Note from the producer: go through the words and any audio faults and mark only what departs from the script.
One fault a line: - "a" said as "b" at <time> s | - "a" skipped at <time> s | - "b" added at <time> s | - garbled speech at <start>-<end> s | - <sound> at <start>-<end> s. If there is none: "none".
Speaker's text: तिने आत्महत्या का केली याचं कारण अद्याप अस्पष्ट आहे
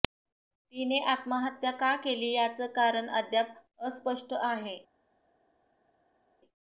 none